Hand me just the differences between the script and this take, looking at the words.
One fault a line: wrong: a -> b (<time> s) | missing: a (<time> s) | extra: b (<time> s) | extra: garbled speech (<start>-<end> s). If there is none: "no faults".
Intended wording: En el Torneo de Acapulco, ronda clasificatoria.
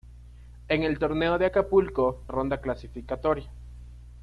no faults